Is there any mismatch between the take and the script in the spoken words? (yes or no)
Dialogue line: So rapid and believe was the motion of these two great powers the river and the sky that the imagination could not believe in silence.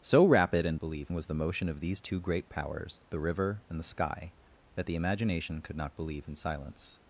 no